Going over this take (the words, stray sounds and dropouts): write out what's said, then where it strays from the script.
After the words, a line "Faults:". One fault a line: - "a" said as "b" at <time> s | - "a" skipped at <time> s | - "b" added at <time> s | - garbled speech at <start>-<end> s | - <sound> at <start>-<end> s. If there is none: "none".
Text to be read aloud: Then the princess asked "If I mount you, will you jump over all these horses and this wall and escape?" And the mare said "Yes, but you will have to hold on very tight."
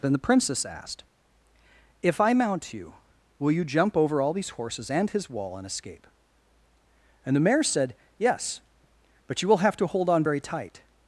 Then the princess asked "If I mount you, will you jump over all these horses and his wall and escape?" And the mare said "Yes, but you will have to hold on very tight."
Faults:
- "this" said as "his" at 5.1 s